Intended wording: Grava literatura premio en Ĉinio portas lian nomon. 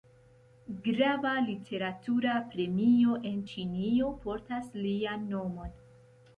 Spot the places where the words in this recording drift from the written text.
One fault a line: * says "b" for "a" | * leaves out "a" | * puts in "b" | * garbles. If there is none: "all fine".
all fine